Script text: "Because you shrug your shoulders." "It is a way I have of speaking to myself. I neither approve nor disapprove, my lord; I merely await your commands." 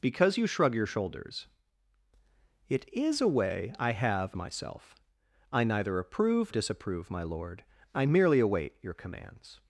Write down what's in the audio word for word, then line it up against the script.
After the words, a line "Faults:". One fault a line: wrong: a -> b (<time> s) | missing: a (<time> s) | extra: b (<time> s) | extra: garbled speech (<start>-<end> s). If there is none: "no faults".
"Because you shrug your shoulders." "It is a way I have myself. I neither approve disapprove, my lord; I merely await your commands."
Faults:
missing: of speaking to (4.3 s)
missing: nor (6.5 s)